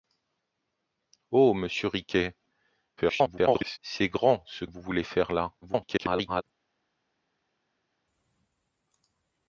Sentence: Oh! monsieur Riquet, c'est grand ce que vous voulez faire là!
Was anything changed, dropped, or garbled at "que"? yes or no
yes